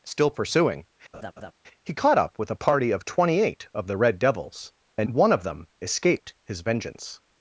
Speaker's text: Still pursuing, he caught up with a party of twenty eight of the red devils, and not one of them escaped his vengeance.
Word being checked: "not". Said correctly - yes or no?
no